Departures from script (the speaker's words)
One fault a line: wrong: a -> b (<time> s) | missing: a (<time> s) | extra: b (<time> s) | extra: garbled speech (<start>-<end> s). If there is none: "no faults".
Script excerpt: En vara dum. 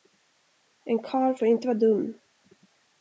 extra: karl får inte (1.0 s)